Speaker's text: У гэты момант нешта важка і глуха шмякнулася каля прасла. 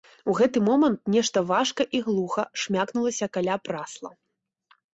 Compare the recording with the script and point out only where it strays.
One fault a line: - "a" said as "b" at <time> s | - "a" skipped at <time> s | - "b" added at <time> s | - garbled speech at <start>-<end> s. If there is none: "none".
none